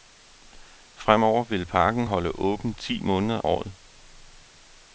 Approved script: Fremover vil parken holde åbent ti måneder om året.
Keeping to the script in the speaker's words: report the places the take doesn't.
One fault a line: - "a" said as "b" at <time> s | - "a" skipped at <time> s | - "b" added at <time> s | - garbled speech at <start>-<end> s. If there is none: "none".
- "om" skipped at 3.4 s